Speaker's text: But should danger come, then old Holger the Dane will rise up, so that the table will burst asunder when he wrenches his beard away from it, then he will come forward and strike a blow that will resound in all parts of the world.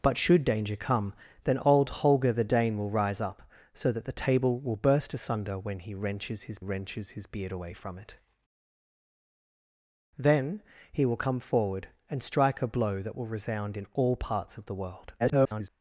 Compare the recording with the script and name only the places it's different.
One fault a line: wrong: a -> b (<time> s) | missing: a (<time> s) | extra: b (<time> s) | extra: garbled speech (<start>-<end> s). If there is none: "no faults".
extra: wrenches his (6.6 s)
extra: garbled speech (15.2-15.7 s)